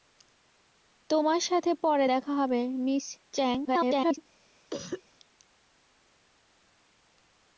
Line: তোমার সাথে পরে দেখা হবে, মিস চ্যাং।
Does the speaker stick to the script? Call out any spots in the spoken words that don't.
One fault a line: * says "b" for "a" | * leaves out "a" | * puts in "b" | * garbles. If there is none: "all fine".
* garbles